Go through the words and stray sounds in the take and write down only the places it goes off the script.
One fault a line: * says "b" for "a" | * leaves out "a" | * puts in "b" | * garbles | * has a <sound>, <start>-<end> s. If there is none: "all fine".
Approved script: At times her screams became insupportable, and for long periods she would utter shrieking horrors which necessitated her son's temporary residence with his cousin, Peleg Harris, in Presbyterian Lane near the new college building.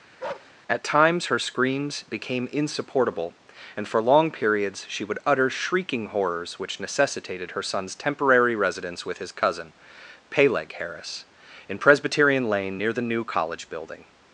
* has a bark, 0.2-0.5 s